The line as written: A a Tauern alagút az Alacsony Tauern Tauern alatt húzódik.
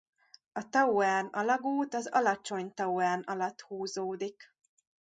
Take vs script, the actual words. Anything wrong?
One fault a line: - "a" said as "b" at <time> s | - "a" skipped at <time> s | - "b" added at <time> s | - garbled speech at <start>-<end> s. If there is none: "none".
- "a" skipped at 0.7 s
- "Tauern" skipped at 3.2 s